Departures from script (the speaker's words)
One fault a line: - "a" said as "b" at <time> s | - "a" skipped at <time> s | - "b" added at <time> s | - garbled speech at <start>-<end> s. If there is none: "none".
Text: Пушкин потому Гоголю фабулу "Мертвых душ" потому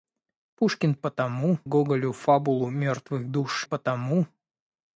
none